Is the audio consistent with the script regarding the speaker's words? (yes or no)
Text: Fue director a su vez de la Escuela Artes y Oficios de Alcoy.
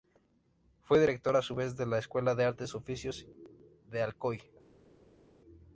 no